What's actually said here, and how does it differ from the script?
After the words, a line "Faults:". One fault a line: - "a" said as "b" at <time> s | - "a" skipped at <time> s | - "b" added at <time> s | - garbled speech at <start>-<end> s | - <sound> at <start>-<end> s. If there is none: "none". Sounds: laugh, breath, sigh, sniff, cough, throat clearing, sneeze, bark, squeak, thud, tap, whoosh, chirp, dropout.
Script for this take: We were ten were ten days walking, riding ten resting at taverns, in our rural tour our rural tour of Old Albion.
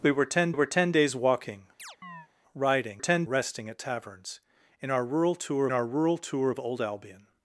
We were ten were ten days walking, riding ten resting at taverns, in our rural tour our rural tour of Old Albion.
Faults:
- chirp at 1.8-2.3 s